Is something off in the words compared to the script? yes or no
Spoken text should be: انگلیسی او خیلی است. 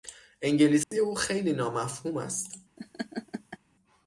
yes